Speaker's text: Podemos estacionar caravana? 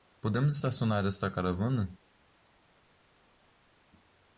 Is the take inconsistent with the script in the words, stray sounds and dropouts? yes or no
yes